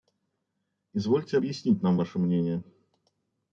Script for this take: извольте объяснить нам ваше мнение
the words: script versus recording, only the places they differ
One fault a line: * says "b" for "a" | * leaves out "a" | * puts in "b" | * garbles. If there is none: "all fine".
all fine